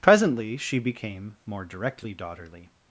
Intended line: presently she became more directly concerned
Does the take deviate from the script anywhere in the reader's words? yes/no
yes